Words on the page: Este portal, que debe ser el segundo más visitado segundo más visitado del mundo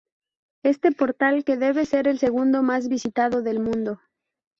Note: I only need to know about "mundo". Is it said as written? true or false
true